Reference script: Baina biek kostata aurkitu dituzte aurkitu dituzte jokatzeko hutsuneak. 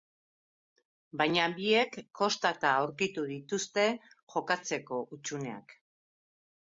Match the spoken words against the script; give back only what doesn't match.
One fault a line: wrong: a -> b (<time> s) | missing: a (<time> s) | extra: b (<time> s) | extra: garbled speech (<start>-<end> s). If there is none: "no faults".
missing: aurkitu dituzte (3.9 s)